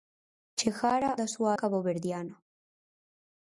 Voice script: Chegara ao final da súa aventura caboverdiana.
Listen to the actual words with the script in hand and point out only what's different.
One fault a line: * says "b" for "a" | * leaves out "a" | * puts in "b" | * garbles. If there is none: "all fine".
* leaves out "ao final"
* leaves out "aventura"